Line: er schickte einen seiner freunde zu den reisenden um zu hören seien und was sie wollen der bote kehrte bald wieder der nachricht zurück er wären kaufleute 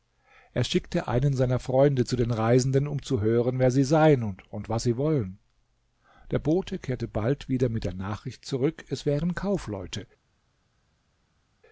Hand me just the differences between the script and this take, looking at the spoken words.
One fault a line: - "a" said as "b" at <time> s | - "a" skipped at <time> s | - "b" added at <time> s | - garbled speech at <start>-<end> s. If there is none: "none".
- "wer sie" added at 3.6 s
- "mit" added at 7.7 s
- "er" said as "es" at 8.9 s